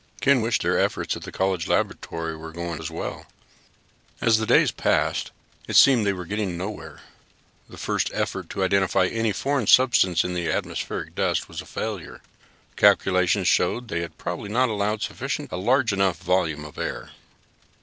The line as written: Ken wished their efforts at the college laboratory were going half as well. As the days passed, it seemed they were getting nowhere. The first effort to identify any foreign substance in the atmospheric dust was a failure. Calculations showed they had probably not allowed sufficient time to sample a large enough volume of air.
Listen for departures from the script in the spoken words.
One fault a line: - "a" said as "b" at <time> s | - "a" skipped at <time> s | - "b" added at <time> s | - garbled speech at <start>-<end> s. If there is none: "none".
- "half" skipped at 2.8 s
- "time to sample" skipped at 15.5 s